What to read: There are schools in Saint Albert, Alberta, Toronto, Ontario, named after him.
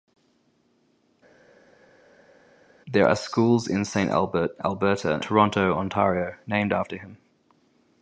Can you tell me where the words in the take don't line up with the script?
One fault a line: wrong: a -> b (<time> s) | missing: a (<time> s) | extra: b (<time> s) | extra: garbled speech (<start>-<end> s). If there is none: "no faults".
no faults